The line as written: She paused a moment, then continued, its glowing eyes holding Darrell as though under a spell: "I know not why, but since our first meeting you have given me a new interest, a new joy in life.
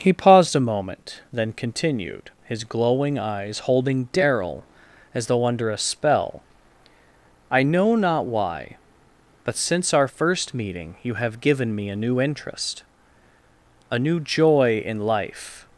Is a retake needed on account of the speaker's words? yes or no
yes